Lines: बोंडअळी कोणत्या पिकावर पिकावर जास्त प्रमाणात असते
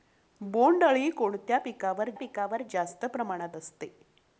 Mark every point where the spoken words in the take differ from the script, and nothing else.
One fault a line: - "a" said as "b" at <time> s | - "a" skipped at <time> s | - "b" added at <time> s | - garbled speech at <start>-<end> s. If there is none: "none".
none